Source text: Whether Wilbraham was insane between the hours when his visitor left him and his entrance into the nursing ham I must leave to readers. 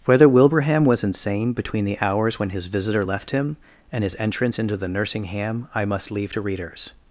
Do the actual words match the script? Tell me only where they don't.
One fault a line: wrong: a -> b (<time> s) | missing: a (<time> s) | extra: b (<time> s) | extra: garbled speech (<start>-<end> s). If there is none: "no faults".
no faults